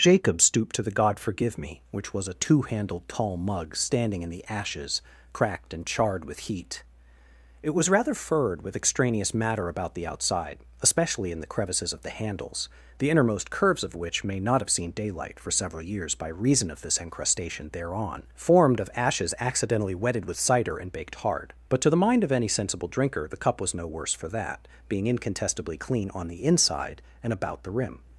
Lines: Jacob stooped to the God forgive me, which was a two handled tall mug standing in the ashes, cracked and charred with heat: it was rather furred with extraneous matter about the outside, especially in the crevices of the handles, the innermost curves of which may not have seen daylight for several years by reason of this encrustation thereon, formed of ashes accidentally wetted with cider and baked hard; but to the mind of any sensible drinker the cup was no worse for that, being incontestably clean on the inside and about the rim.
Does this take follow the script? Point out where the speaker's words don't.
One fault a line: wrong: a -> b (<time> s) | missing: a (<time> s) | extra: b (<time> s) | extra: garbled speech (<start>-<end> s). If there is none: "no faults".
no faults